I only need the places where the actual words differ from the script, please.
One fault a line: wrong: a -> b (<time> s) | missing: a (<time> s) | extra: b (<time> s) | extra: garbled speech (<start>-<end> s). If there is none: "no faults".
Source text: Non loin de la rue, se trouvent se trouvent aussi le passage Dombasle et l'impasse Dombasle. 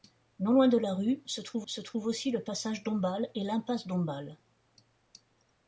no faults